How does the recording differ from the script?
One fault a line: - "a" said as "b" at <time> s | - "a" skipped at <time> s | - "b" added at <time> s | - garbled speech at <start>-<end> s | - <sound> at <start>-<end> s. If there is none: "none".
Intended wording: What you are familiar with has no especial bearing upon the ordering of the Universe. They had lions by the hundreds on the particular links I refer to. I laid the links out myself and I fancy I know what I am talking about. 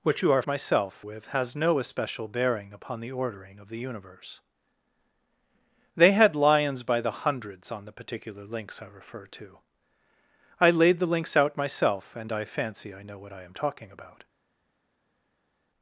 - "familiar" said as "myself" at 0.5 s